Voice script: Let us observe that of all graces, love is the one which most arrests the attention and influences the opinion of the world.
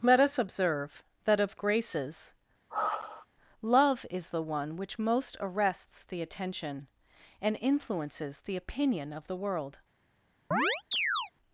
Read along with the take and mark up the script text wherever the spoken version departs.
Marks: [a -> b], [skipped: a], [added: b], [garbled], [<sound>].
Let us observe that of [skipped: all] graces, [sigh] love is the one which most arrests the attention and influences the opinion of the world. [chirp]